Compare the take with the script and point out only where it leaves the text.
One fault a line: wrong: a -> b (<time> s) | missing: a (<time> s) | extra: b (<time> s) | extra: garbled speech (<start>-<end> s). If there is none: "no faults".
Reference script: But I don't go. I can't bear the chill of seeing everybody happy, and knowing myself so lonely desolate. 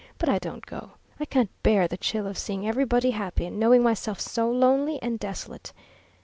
extra: and (5.0 s)